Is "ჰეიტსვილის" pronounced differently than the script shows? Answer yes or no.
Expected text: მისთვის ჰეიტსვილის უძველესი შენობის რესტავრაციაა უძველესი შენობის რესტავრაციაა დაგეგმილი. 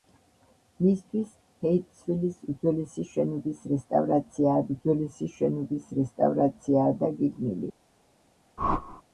no